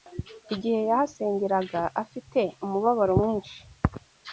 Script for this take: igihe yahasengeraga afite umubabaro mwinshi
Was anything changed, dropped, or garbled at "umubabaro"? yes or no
no